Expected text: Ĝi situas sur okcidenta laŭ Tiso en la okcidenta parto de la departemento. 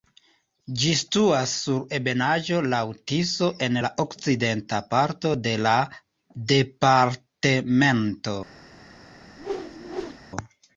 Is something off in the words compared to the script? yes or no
yes